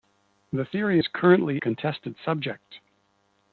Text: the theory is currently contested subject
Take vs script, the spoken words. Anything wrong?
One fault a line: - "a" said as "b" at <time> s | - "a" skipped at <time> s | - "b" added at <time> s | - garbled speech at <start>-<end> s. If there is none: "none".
none